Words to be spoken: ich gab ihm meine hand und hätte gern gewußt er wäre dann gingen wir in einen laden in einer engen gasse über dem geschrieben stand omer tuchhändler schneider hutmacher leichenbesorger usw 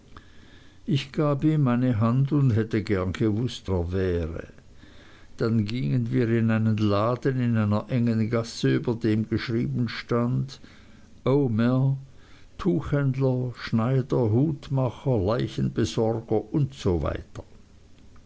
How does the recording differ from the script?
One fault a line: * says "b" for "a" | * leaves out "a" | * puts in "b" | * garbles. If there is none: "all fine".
all fine